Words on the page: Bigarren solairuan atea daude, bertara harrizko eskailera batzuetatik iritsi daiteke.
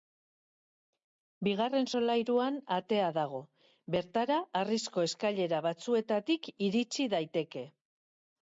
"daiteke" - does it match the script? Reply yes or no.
yes